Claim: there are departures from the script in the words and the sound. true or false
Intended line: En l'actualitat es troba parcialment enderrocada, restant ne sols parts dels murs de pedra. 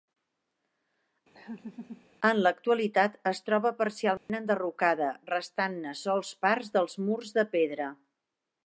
true